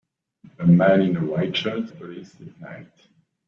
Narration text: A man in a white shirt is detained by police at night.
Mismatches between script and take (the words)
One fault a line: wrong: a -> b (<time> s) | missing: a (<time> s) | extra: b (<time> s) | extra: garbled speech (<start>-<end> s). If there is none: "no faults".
missing: is detained by (1.9 s)